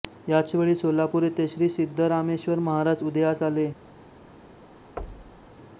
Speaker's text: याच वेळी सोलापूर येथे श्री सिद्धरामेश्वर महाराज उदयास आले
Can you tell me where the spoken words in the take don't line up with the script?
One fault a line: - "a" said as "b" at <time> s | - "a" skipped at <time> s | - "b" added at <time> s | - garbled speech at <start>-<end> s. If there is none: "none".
none